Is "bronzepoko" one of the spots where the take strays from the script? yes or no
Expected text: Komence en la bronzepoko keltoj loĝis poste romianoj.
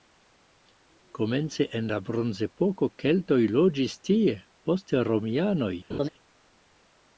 no